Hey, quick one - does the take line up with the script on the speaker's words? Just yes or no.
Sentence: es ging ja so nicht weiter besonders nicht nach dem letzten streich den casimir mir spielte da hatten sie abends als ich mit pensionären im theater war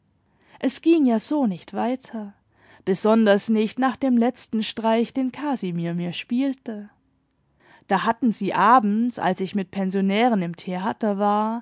yes